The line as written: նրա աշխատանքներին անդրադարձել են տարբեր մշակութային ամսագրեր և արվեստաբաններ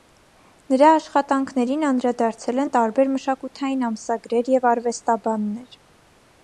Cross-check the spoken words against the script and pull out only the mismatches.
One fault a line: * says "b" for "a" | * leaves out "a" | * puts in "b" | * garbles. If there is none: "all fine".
all fine